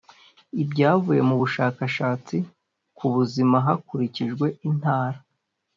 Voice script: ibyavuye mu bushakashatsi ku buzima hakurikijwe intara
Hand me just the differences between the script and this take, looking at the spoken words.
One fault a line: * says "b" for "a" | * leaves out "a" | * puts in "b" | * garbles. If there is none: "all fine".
all fine